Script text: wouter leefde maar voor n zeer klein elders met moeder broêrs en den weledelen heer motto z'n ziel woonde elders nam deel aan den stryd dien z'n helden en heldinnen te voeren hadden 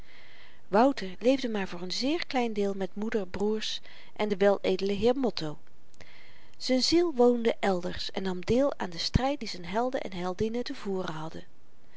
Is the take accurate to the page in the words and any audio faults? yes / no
no